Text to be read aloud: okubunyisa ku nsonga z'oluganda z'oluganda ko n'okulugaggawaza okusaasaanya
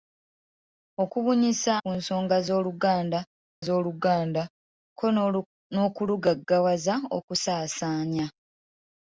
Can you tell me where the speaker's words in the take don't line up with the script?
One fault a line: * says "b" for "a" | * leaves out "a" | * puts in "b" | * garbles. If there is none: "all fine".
all fine